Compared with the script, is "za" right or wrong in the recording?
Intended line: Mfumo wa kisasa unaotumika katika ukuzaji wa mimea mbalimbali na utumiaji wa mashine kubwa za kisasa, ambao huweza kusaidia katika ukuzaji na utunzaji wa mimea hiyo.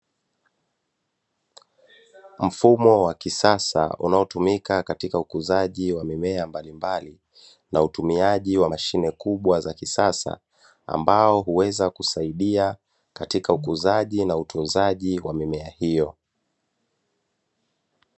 right